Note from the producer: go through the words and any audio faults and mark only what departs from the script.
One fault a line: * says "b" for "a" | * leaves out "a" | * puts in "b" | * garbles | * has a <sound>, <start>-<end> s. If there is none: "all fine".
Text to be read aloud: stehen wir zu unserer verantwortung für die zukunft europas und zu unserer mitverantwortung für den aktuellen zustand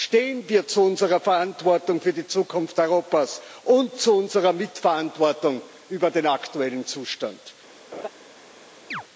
* has a laugh, 7.9-8.1 s
* has a chirp, 8.9-9.0 s